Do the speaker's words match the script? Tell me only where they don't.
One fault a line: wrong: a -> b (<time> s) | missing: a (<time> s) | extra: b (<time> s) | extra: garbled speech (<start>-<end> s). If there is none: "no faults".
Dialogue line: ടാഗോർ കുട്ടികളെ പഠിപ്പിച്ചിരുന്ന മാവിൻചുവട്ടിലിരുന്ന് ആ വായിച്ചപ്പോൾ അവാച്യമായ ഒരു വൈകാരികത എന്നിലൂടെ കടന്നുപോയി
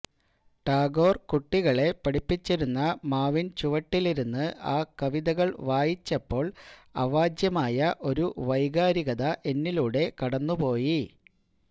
extra: കവിതകൾ (5.0 s)